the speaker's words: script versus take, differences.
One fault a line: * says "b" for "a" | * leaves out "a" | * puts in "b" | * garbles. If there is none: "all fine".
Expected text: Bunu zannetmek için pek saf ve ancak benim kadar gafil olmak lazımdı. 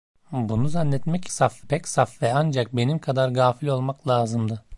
* says "saf" for "için"